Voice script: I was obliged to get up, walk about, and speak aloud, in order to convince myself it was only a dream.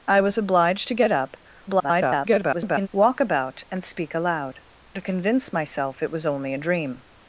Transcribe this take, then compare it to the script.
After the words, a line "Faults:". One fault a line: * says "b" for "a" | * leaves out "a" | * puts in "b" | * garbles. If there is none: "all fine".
I was obliged to get up, [garbled] walk about, and speak aloud, to convince myself it was only a dream.
Faults:
* garbles
* leaves out "in order"